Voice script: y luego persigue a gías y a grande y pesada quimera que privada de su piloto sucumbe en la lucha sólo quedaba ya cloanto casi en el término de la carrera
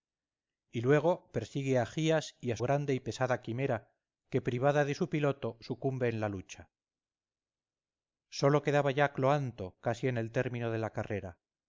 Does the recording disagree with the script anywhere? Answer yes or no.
no